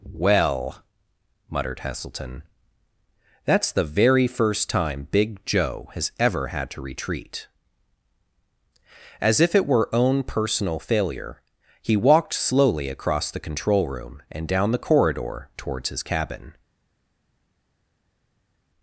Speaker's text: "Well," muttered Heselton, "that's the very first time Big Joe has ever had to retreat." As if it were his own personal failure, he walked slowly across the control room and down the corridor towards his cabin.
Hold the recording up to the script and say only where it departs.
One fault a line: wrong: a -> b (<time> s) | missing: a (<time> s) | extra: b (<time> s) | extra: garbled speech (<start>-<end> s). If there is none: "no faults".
missing: his (9.9 s)